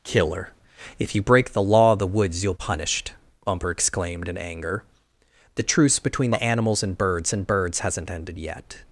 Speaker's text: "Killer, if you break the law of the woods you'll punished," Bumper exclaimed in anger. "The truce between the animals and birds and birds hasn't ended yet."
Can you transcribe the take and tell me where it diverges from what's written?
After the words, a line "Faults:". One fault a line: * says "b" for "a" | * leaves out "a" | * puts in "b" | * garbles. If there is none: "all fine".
"Killer, if you break the law of the woods you'll punished," Bumper exclaimed in anger. "The truce between the animals and birds and birds hasn't ended yet."
Faults:
all fine